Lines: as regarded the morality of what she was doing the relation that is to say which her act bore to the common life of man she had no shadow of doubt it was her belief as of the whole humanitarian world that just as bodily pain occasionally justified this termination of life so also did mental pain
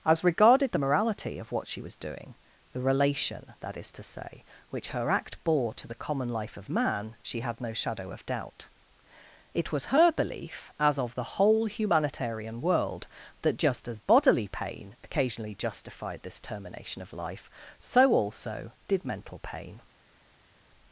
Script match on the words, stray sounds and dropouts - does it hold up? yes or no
yes